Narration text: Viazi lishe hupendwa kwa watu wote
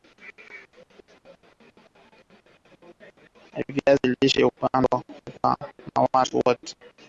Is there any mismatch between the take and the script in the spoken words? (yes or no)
yes